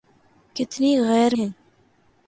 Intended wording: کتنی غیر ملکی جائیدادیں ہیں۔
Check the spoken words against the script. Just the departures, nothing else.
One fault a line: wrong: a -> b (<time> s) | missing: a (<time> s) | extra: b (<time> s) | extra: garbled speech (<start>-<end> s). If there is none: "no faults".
missing: ملکی جائیدادیں (1.4 s)